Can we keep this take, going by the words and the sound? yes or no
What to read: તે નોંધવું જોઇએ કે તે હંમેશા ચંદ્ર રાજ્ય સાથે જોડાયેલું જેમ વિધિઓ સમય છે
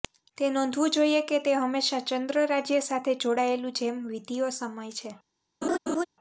no